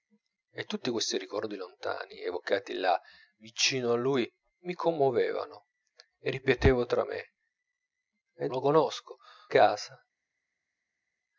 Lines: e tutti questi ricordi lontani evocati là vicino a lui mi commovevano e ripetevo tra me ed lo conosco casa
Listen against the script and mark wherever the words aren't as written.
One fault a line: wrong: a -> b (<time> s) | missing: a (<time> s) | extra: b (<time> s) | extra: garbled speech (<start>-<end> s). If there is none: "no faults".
no faults